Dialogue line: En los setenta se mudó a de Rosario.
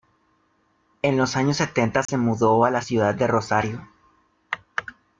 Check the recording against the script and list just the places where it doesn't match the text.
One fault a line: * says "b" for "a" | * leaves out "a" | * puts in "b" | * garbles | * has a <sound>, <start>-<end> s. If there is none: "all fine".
* puts in "años"
* has a dropout, 2.1-2.1 s
* puts in "la ciudad"